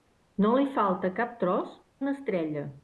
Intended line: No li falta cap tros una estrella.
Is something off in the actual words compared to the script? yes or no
no